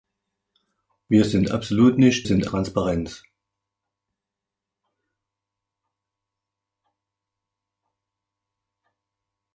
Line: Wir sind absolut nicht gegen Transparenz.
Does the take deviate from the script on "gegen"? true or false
true